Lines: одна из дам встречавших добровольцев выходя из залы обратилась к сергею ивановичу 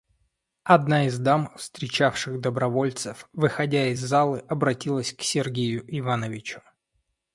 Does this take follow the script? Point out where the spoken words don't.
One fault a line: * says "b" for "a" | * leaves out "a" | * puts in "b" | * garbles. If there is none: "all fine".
all fine